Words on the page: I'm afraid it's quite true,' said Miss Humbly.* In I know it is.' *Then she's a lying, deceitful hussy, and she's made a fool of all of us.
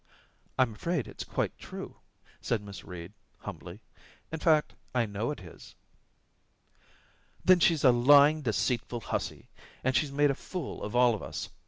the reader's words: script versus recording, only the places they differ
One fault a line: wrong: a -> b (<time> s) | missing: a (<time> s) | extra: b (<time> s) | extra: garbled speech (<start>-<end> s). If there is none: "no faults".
extra: Reed (2.8 s)
extra: fact (4.4 s)